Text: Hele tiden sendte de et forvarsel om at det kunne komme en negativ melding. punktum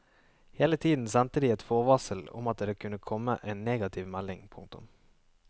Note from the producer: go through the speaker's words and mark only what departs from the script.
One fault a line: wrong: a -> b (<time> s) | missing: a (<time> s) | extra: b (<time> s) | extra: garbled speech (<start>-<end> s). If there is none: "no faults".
no faults